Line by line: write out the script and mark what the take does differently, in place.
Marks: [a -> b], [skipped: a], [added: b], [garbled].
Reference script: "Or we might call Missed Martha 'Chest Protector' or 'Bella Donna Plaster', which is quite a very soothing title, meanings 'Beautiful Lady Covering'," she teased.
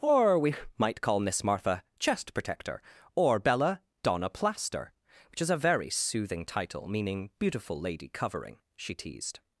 "Or we might call [Missed -> Miss] Martha 'Chest Protector' or 'Bella Donna Plaster', which is [skipped: quite] a very soothing title, [meanings -> meaning] 'Beautiful Lady Covering'," she teased.